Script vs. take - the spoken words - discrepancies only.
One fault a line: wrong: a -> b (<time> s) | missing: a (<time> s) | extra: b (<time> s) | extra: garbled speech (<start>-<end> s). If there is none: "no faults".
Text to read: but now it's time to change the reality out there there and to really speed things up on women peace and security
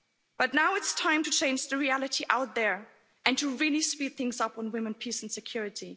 missing: there (2.9 s)